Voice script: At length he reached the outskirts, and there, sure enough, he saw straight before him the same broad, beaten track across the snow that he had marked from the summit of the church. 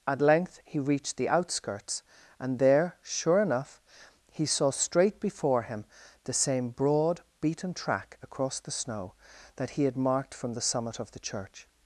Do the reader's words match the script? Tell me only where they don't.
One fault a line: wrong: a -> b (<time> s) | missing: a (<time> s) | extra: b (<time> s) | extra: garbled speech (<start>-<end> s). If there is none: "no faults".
no faults